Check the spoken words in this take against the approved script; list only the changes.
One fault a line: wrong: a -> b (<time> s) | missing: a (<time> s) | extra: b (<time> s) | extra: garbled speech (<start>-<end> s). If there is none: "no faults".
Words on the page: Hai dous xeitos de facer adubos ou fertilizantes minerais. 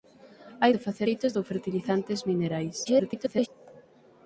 missing: dous xeitos (0.7 s)
wrong: adubos -> xeitos (1.0 s)
extra: garbled speech (2.9-3.5 s)